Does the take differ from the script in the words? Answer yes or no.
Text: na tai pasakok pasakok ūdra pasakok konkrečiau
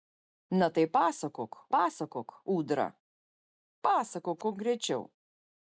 no